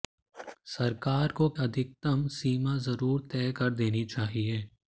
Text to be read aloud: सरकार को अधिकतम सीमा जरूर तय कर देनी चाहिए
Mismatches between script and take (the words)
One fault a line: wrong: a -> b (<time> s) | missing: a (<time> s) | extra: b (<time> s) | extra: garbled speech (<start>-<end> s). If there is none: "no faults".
no faults